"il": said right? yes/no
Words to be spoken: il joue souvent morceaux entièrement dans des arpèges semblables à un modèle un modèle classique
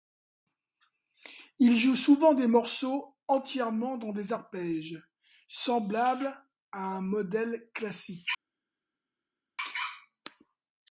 yes